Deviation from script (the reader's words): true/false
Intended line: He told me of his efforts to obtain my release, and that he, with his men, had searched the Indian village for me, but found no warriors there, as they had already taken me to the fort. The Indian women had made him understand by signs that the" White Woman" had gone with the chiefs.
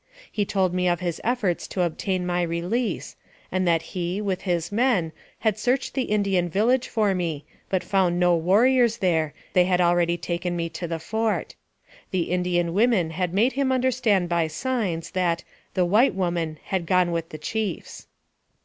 true